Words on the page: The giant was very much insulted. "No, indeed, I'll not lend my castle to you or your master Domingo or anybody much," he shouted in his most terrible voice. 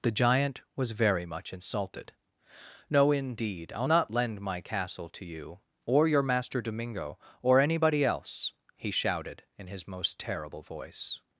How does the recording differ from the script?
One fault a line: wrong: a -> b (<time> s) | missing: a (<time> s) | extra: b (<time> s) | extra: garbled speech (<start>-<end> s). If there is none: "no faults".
wrong: much -> else (8.0 s)